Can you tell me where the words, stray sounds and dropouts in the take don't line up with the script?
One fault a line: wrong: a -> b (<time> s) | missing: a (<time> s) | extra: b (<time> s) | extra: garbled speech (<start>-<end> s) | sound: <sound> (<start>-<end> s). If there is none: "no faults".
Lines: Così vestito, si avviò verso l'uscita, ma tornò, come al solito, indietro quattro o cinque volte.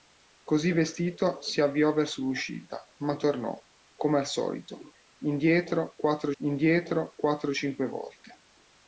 extra: indietro quattro (6.4 s)